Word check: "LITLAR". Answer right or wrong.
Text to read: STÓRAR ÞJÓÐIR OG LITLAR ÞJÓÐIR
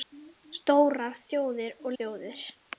wrong